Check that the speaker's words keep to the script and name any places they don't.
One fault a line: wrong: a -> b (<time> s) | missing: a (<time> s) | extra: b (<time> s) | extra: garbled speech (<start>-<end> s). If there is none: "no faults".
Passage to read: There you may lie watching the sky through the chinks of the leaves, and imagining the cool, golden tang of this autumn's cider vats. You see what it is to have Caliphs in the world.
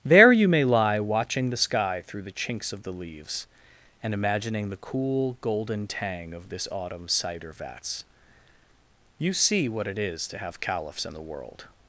no faults